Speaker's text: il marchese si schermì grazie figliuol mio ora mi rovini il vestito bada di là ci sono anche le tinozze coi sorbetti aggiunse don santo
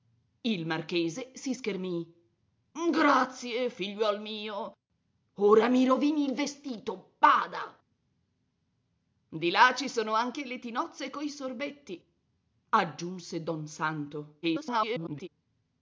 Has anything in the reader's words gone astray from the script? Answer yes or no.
yes